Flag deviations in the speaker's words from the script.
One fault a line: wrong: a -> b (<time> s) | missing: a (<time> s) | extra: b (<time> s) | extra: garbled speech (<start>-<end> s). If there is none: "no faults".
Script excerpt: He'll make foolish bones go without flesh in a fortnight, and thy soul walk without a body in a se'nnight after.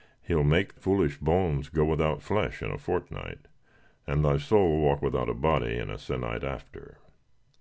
no faults